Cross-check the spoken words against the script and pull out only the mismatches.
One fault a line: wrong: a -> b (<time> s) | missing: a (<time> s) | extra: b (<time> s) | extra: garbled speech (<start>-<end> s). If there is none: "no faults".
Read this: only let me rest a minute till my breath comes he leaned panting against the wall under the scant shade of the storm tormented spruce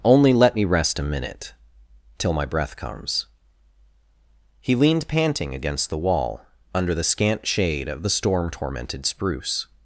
no faults